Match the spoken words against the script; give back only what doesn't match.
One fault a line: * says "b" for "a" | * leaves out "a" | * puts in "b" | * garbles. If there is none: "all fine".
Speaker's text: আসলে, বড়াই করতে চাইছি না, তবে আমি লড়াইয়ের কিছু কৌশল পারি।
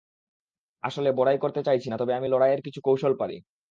all fine